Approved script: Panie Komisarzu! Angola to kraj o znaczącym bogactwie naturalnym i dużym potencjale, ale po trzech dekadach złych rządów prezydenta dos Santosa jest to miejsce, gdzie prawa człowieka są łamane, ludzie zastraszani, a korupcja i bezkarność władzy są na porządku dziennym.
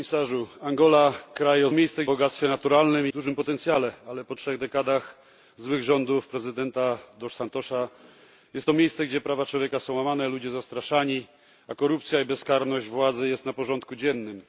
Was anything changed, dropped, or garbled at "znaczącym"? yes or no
yes